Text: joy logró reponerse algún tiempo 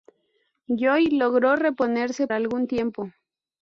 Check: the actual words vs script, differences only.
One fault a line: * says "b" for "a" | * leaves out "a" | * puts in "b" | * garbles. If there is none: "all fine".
all fine